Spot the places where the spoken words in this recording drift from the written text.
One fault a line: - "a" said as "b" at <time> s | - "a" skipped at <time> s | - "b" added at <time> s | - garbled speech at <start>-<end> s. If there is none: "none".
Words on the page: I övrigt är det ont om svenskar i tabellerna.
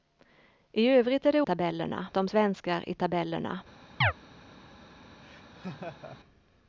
- "ont" said as "tabellerna" at 1.4 s